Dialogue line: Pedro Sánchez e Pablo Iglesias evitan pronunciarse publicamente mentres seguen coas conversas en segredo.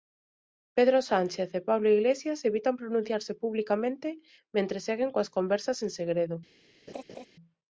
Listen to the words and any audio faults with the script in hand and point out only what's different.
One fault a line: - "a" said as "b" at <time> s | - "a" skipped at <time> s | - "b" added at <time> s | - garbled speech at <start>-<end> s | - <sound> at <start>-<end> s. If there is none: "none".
- laugh at 6.9-7.3 s